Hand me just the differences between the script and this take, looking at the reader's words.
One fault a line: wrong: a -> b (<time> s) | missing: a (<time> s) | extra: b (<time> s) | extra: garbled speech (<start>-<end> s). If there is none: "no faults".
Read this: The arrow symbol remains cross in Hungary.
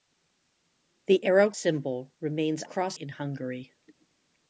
no faults